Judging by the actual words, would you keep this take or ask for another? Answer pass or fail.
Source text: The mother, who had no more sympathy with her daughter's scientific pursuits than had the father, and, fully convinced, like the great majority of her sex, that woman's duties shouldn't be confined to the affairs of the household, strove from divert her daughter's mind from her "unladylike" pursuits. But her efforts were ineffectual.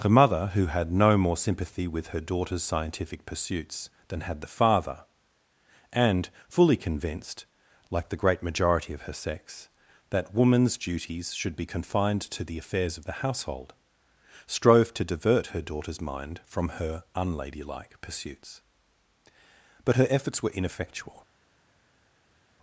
fail